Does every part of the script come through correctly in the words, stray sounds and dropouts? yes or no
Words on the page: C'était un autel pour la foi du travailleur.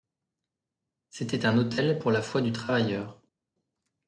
yes